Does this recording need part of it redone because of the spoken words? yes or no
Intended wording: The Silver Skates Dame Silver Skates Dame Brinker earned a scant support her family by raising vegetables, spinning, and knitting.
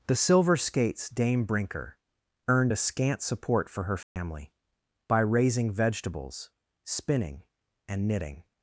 yes